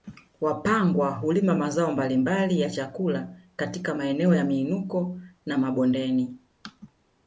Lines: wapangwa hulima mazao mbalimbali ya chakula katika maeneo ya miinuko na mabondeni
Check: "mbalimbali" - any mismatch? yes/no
no